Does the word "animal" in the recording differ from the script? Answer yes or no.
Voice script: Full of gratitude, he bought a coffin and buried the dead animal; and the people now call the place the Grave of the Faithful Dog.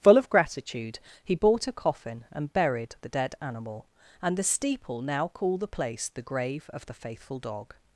no